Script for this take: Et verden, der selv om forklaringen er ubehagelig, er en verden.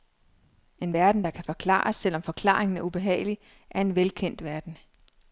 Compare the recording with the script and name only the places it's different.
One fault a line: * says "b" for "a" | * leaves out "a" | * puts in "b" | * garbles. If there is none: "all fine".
* says "En" for "Et"
* puts in "kan forklares"
* puts in "velkendt"